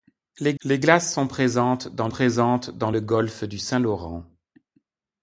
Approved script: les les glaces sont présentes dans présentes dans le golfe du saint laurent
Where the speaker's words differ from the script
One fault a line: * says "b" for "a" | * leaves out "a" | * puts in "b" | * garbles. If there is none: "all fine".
all fine